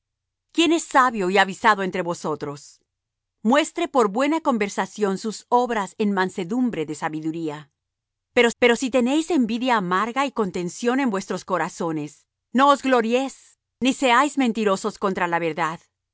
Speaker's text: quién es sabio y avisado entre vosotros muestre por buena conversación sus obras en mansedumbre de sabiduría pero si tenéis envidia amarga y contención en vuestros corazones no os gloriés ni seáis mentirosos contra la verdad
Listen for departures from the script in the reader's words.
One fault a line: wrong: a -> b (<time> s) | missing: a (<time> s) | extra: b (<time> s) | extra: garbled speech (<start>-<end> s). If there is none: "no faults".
extra: pero (8.6 s)